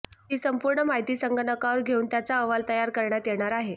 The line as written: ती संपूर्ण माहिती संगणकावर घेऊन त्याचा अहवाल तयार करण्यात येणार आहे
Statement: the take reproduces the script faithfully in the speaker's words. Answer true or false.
true